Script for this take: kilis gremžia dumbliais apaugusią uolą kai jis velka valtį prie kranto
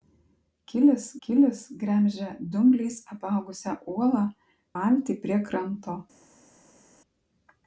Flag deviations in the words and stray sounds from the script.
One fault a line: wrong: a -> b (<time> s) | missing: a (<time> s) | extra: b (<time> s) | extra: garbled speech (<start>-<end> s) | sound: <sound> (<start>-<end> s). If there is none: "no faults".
extra: kilis (1.3 s)
missing: kai jis velka (4.2 s)